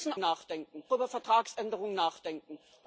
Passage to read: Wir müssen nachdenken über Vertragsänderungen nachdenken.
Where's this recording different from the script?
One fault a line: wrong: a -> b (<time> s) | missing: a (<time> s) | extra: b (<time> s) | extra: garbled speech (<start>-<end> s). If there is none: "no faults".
no faults